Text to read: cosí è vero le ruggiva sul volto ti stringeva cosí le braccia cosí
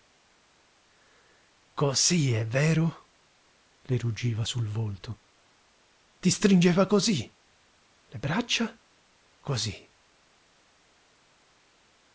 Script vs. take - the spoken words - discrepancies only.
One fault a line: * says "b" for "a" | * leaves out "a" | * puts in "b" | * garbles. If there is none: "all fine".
all fine